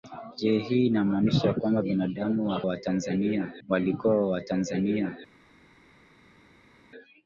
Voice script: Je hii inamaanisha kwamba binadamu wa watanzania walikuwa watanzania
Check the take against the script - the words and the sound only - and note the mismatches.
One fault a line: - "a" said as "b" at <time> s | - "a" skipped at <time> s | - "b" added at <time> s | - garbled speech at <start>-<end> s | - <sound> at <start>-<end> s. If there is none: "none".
none